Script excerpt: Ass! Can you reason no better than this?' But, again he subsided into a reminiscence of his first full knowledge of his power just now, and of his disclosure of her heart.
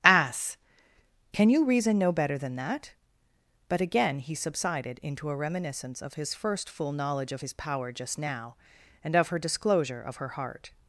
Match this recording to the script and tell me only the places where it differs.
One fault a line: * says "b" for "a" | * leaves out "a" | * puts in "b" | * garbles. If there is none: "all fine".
* says "that" for "this"
* says "her" for "his"